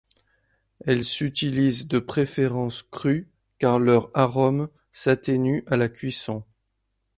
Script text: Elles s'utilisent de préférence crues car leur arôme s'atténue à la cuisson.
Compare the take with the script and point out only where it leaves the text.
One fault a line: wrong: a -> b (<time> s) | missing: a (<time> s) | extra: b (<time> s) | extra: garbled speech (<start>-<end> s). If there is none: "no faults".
no faults